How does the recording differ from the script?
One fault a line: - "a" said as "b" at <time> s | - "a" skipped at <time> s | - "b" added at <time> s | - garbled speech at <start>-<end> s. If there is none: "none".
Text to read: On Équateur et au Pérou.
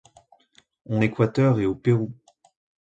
none